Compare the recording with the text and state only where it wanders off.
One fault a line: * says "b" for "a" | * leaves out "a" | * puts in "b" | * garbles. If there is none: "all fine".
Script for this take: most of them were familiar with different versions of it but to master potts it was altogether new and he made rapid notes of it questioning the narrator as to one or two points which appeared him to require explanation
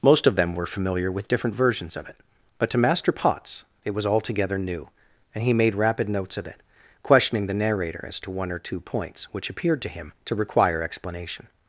* puts in "to"